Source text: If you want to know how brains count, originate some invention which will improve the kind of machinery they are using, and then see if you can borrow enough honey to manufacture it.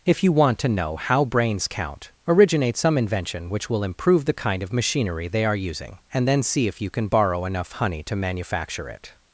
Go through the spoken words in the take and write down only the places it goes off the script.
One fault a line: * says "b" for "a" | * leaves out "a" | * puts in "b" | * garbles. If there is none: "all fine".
all fine